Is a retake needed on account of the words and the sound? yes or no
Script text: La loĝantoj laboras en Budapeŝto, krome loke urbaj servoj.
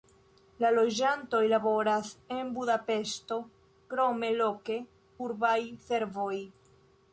no